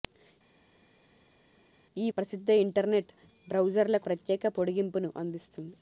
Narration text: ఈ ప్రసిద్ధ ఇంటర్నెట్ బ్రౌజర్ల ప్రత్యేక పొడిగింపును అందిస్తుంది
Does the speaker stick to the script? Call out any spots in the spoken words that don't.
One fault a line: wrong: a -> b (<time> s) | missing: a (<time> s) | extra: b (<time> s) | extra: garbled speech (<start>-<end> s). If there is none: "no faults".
no faults